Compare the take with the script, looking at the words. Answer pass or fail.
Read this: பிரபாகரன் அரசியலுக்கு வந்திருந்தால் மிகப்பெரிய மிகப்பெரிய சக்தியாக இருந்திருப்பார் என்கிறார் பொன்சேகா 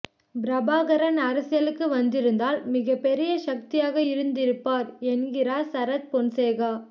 fail